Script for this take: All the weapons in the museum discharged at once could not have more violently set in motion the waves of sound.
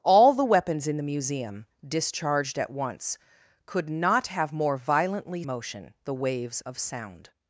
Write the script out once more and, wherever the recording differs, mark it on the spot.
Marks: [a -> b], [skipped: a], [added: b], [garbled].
All the weapons in the museum discharged at once could not have more violently [skipped: set in] motion the waves of sound.